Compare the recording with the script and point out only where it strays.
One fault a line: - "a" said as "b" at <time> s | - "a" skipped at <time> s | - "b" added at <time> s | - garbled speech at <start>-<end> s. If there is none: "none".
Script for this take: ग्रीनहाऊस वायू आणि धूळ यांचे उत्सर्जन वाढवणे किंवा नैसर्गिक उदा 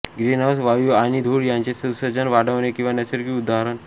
none